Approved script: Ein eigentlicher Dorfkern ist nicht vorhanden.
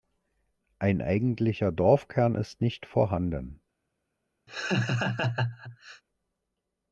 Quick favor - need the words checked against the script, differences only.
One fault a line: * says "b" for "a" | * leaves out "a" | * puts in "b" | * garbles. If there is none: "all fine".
all fine